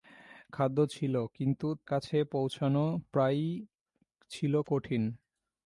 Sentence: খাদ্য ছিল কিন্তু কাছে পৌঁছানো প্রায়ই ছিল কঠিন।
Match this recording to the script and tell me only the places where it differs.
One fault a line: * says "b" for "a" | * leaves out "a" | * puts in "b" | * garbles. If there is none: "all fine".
all fine